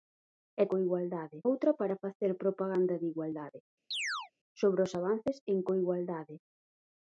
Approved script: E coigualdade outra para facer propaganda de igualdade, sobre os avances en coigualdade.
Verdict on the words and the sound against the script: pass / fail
fail